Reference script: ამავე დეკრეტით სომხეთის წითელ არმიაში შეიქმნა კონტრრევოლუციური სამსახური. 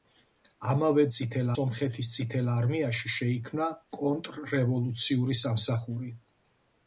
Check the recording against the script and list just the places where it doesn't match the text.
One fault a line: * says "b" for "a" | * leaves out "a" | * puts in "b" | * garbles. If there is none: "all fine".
* says "წითელ" for "დეკრეტით"